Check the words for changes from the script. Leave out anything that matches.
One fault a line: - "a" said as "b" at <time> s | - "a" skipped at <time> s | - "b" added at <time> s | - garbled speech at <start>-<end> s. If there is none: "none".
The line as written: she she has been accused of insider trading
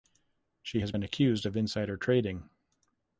- "she" skipped at 0.8 s